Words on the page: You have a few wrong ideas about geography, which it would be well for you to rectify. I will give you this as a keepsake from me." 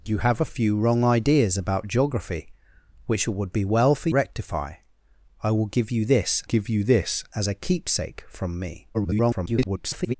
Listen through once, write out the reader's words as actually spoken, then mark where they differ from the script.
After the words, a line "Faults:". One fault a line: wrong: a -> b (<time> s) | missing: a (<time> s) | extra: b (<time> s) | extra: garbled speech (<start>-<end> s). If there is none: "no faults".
You have a few wrong ideas about geography, which it would be well for rectify. I will give you this give you this as a keepsake from me." [garbled]
Faults:
missing: you to (4.1 s)
extra: give you this (6.4 s)
extra: garbled speech (8.9-10.1 s)